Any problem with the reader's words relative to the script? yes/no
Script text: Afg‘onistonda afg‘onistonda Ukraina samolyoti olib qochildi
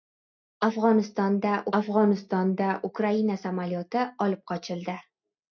no